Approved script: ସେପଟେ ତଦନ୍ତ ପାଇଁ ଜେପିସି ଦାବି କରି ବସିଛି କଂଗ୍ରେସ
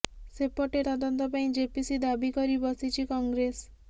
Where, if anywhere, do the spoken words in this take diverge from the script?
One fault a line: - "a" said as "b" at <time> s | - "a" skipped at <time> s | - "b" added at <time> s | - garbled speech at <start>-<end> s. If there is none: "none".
none